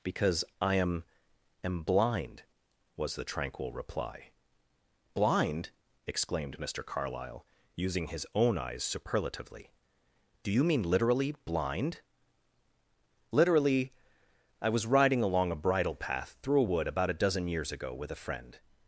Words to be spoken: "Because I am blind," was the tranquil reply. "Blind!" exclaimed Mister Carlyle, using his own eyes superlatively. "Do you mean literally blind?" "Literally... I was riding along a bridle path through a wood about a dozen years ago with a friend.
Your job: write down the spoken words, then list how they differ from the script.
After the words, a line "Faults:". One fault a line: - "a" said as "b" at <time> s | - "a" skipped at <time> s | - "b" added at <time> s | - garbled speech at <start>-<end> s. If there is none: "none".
"Because I am am blind," was the tranquil reply. "Blind!" exclaimed Mister Carlyle, using his own eyes superlatively. "Do you mean literally blind?" "Literally... I was riding along a bridle path through a wood about a dozen years ago with a friend.
Faults:
- "am" added at 1.6 s